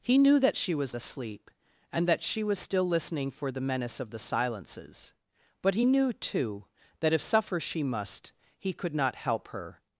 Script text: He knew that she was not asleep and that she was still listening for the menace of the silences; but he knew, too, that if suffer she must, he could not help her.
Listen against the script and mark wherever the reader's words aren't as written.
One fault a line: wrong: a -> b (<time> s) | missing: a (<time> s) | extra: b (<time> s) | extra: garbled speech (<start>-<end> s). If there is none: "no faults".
missing: not (0.9 s)